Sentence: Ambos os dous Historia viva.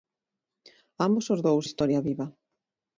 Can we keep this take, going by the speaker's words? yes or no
yes